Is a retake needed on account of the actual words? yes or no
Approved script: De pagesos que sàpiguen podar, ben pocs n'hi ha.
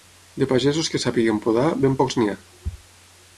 no